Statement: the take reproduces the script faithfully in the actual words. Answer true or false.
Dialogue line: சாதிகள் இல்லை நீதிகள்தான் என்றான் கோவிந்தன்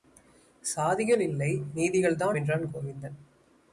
true